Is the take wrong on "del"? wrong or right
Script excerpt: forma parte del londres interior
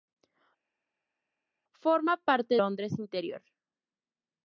wrong